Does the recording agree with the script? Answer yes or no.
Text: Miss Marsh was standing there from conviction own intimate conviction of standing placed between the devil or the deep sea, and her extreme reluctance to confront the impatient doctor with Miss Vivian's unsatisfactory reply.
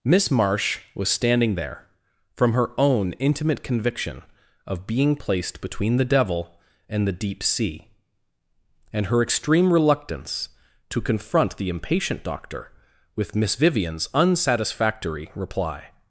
no